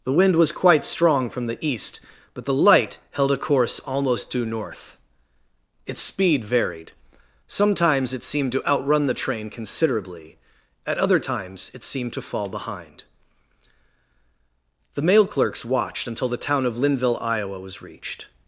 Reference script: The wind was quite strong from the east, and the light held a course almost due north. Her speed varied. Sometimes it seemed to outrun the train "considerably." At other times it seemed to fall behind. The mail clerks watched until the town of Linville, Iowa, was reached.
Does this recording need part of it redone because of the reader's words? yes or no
yes